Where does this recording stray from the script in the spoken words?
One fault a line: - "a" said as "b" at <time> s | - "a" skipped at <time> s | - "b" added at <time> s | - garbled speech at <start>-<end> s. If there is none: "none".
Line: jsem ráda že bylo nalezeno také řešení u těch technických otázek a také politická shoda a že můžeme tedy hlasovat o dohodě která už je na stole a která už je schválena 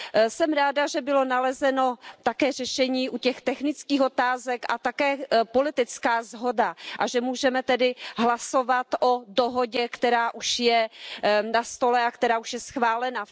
none